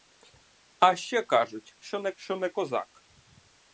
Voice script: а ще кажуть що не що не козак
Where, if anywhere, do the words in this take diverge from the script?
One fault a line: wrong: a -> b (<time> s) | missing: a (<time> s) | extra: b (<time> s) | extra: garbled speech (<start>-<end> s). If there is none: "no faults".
no faults